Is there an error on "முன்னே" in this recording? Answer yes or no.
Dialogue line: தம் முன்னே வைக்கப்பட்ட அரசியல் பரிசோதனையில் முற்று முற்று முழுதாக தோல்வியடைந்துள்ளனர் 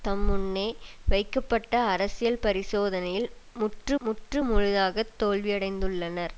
no